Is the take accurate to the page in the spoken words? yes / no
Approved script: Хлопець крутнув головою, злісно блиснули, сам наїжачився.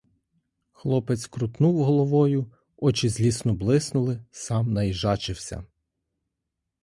no